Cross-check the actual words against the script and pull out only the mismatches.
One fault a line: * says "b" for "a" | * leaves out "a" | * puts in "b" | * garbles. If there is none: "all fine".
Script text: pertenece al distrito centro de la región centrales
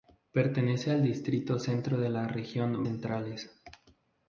all fine